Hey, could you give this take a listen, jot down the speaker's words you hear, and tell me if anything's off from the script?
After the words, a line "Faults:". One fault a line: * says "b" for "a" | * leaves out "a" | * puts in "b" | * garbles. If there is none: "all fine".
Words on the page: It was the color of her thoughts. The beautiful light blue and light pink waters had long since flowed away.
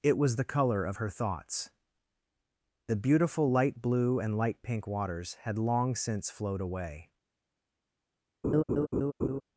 It was the color of her thoughts. The beautiful light blue and light pink waters had long since flowed away.
Faults:
all fine